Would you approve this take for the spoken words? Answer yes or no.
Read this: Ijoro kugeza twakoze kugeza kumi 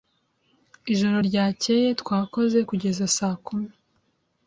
no